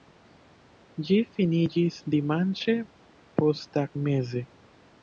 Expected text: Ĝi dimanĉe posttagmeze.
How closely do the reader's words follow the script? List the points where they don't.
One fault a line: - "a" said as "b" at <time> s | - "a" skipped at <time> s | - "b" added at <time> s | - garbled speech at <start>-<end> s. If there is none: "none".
- "finiĝis" added at 1.4 s